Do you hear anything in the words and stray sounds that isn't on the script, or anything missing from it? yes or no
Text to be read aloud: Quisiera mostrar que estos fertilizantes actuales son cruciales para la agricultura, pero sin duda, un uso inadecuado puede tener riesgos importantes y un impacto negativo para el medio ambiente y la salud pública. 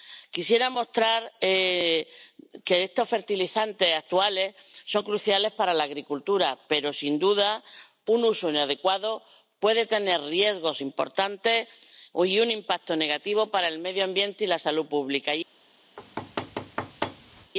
yes